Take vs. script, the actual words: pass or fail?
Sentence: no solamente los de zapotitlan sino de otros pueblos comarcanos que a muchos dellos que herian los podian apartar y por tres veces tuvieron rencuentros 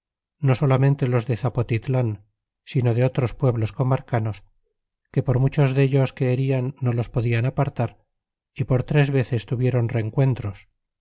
fail